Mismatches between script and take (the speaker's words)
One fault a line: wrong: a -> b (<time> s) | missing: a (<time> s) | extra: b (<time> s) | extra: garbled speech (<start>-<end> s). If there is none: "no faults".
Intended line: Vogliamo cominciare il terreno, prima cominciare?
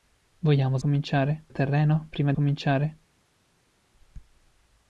no faults